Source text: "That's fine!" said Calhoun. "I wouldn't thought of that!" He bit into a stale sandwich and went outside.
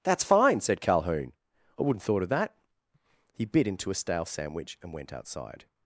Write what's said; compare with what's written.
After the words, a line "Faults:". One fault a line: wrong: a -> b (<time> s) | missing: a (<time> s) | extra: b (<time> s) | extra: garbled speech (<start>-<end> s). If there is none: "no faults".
"That's fine!" said Calhoun. "I wouldn't thought of that!" He bit into a stale sandwich and went outside.
Faults:
no faults